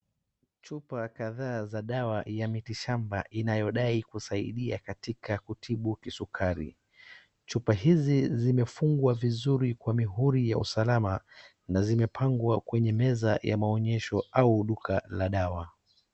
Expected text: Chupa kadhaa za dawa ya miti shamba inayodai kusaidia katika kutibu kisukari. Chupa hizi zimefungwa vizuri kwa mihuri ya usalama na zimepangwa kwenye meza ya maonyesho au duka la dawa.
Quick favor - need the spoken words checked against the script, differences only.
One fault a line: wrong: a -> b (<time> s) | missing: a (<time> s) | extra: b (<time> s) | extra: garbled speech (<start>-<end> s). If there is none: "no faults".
no faults